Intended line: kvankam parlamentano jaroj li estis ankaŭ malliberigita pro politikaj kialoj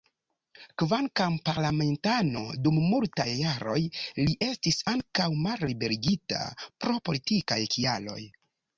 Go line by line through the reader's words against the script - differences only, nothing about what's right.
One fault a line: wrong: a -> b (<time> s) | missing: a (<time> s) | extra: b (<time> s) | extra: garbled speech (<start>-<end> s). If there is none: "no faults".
extra: dum multaj (2.7 s)